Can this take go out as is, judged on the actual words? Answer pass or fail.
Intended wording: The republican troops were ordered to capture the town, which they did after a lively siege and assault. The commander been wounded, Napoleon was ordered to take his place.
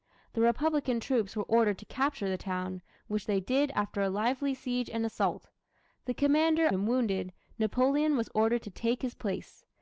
pass